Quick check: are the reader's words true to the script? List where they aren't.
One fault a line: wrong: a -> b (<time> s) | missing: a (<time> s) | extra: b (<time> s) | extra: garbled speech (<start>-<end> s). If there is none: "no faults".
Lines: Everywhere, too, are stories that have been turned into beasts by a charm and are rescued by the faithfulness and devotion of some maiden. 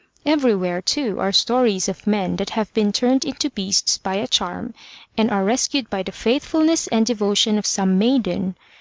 extra: of men (1.9 s)